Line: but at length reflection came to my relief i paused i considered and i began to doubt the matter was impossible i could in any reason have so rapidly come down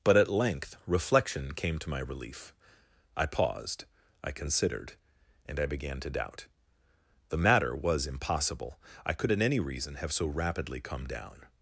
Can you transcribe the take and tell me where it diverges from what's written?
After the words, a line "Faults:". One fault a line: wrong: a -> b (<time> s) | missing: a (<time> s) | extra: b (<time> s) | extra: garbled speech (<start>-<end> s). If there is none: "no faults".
but at length reflection came to my relief i paused i considered and i began to doubt the matter was impossible i could in any reason have so rapidly come down
Faults:
no faults